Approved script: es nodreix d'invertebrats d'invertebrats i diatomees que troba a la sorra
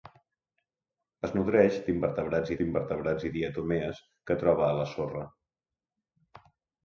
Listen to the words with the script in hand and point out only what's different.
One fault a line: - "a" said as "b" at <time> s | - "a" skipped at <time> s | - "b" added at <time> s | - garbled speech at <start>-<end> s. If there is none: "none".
none